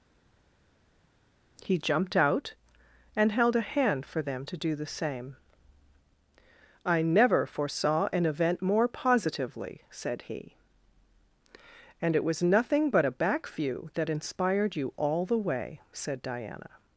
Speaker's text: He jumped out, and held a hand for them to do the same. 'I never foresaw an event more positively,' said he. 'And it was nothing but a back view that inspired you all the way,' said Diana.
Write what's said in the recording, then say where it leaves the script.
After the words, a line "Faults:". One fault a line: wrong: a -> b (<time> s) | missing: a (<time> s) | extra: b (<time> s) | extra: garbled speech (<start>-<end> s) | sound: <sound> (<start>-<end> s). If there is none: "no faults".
He jumped out, and held a hand for them to do the same. 'I never foresaw an event more positively,' said he. 'And it was nothing but a back view that inspired you all the way,' said Diana.
Faults:
no faults